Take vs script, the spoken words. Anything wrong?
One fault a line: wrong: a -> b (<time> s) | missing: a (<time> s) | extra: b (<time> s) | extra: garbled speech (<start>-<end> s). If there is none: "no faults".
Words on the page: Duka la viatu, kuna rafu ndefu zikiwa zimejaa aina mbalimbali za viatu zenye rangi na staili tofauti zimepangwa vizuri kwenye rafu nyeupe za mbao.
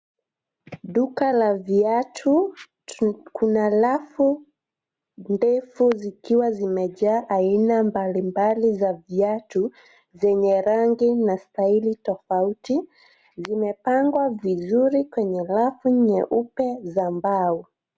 no faults